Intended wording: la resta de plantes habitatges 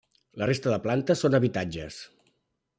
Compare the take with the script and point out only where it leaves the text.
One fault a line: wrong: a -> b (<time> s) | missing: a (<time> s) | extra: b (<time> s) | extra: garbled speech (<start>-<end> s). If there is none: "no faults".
extra: són (1.3 s)